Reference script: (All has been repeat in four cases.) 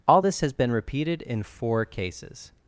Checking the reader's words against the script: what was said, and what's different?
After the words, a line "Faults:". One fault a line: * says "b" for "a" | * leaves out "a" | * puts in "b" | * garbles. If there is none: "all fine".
(All this has been repeated in four cases.)
Faults:
* puts in "this"
* says "repeated" for "repeat"